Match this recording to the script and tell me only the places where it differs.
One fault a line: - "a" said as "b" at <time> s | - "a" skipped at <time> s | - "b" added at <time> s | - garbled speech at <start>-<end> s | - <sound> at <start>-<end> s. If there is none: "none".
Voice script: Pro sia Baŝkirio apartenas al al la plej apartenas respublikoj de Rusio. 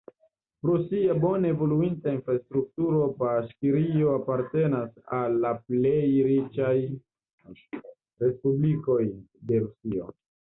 - "bone evoluinta infrastrukturo" added at 1.2 s
- "al" skipped at 5.4 s
- "apartenas" said as "riĉaj" at 6.3 s